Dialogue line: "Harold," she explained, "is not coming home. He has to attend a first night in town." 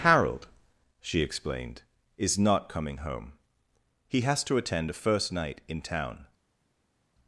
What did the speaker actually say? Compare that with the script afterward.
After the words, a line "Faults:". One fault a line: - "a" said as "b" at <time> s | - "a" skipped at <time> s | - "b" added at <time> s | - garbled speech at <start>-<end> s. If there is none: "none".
"Harold," she explained, "is not coming home. He has to attend a first night in town."
Faults:
none